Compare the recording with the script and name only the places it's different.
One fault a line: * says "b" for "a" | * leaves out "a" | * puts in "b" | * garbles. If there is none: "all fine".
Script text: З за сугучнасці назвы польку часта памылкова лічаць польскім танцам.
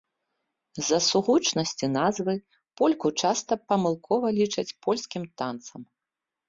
all fine